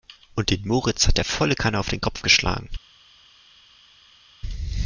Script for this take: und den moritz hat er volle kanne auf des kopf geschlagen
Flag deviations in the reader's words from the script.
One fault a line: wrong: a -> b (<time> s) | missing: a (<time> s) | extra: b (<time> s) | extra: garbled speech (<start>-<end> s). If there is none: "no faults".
wrong: des -> den (1.9 s)